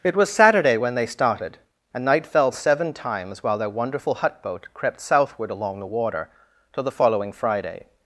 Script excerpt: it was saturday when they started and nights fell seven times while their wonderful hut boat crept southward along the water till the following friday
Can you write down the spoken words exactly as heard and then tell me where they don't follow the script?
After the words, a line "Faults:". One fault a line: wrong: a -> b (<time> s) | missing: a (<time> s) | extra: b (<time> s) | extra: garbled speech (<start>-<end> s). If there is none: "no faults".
it was saturday when they started and night fell seven times while their wonderful hut boat crept southward along the water till the following friday
Faults:
wrong: nights -> night (2.0 s)